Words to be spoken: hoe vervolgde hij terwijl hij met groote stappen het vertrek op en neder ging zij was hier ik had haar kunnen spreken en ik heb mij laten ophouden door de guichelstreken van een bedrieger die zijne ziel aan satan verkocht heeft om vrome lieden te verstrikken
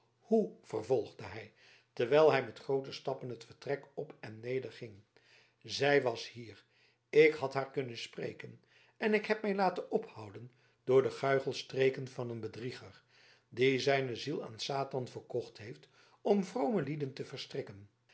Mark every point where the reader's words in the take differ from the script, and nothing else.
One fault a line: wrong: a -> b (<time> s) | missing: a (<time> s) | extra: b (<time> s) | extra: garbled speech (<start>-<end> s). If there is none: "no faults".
no faults